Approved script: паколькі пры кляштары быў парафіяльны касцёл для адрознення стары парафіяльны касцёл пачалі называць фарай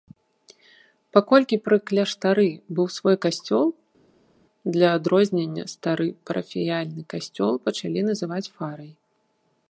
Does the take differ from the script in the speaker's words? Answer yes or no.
yes